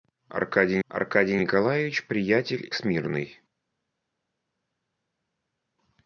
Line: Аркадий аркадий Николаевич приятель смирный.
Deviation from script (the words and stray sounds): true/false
false